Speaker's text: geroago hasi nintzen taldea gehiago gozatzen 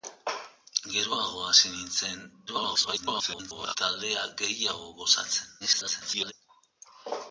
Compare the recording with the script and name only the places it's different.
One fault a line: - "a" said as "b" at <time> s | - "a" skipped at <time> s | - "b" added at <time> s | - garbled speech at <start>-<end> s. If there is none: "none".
- garbled speech at 2.5-3.8 s
- garbled speech at 5.6-6.3 s